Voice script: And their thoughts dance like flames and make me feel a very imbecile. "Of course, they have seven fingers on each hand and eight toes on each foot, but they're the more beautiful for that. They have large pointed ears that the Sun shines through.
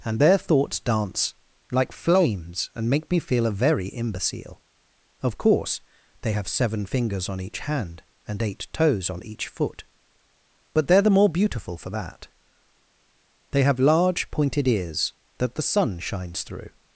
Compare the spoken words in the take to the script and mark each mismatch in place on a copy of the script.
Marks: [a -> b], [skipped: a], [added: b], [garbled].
And their thoughts dance like flames and make me feel a very imbecile. "Of course, they have seven fingers on each hand and eight toes on each foot, but they're the more beautiful for that. They have large pointed ears that the Sun shines through.